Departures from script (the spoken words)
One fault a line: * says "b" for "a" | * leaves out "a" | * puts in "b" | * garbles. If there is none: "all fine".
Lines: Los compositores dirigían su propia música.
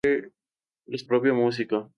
* leaves out "compositores dirigían su"